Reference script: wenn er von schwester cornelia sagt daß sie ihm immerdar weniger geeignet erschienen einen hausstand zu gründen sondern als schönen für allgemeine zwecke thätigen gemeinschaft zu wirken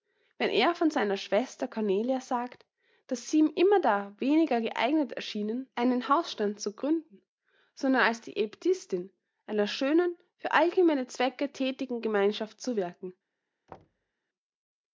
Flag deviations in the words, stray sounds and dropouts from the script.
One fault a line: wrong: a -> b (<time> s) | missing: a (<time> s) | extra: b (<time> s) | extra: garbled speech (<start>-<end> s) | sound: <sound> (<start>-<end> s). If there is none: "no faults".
extra: seiner (0.9 s)
extra: die aebtissin einer (8.2 s)
sound: thud (13.7-14.1 s)